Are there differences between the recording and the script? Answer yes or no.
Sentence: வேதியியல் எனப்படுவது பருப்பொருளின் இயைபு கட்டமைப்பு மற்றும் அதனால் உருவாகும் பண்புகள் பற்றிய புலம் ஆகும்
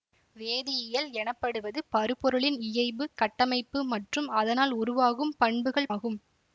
yes